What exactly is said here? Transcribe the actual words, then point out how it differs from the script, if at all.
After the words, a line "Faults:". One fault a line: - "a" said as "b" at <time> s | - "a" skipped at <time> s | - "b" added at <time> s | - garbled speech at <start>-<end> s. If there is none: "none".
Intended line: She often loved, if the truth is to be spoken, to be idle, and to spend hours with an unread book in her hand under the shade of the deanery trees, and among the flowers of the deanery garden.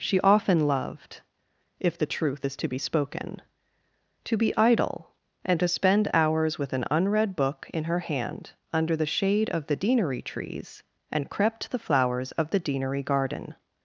She often loved, if the truth is to be spoken, to be idle, and to spend hours with an unread book in her hand under the shade of the deanery trees, and crept the flowers of the deanery garden.
Faults:
- "among" said as "crept" at 11.3 s